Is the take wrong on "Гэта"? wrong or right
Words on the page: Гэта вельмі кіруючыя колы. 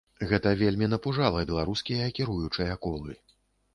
right